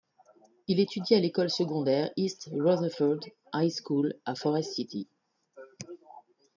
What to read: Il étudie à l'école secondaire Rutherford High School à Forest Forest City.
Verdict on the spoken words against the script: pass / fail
fail